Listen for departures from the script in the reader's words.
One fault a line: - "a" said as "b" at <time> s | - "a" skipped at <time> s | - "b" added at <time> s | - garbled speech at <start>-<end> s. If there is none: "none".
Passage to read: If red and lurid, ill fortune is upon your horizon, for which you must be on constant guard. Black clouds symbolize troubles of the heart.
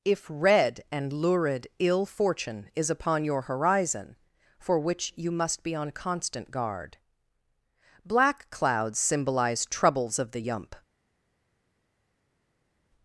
- "heart" said as "yump" at 10.4 s